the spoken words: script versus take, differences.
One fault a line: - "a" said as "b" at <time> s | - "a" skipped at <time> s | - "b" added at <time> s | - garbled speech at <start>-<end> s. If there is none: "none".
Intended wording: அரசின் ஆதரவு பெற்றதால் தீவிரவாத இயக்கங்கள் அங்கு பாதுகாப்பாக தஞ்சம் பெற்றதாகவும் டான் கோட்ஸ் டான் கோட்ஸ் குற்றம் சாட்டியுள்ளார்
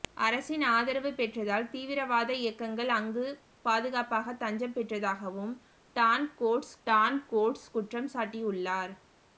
none